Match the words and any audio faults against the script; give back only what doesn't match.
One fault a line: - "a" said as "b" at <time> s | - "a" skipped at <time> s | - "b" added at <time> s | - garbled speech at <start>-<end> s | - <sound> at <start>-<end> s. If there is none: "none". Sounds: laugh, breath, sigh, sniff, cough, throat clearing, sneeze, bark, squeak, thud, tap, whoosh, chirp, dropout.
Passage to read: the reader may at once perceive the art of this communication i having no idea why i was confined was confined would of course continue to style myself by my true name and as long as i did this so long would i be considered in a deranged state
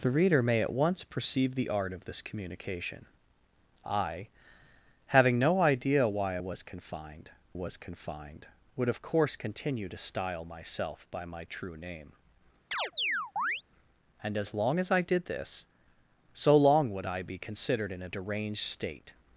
- chirp at 12.7-13.6 s